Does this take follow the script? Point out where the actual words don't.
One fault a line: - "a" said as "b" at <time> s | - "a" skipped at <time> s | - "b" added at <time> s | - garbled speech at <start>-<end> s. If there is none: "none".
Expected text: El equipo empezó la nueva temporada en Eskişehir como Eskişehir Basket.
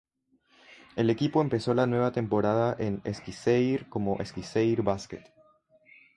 none